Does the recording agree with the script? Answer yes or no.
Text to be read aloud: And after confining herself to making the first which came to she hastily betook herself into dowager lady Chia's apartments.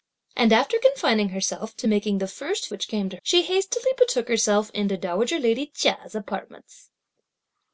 yes